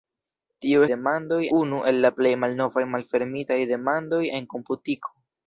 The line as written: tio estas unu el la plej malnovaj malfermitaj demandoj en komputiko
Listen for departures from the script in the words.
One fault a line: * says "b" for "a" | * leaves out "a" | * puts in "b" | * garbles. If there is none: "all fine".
* says "demandoj" for "estas"